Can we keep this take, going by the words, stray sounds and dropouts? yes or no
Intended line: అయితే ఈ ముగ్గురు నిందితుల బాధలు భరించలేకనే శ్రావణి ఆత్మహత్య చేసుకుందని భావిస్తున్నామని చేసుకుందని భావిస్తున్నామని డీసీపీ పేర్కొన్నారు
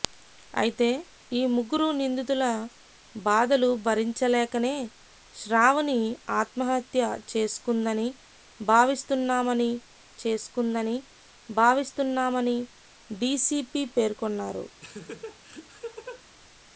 no